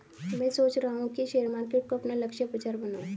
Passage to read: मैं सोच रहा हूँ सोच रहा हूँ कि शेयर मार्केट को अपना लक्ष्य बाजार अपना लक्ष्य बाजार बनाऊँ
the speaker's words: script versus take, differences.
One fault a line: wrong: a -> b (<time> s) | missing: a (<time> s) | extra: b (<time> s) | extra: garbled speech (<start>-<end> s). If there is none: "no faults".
missing: सोच रहा हूँ (1.1 s)
missing: अपना लक्ष्य बाजार (2.8 s)